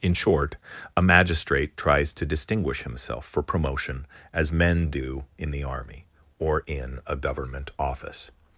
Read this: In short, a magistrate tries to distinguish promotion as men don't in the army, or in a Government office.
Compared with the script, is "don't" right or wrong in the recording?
wrong